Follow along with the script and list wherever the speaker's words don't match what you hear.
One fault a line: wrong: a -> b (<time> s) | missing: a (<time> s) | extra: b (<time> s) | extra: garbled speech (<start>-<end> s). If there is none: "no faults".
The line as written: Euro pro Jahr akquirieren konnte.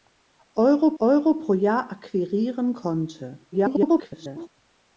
extra: euro (1.0 s)
extra: garbled speech (3.5-4.5 s)